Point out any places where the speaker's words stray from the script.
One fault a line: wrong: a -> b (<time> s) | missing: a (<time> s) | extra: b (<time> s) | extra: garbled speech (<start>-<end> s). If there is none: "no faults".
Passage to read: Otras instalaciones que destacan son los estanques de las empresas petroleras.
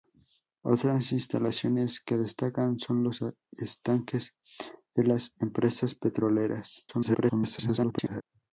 extra: garbled speech (6.9-8.2 s)